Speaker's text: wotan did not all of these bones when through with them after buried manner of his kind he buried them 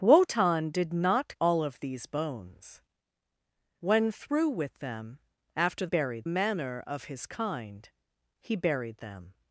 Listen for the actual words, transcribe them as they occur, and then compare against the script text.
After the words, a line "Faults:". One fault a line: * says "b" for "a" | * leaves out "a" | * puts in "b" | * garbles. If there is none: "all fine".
wotan did not all of these bones when through with them after buried manner of his kind he buried them
Faults:
all fine